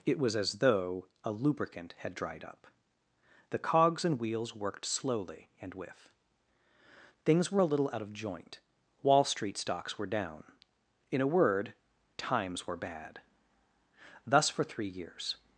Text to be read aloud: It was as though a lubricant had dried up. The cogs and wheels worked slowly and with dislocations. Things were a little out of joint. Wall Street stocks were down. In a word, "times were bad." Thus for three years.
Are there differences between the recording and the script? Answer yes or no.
yes